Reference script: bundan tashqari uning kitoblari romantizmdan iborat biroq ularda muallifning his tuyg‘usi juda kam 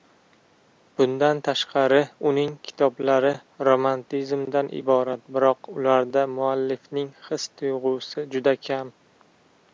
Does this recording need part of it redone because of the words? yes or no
no